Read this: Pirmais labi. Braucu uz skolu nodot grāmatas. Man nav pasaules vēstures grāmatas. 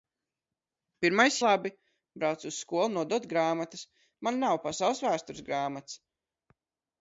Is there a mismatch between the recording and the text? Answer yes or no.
no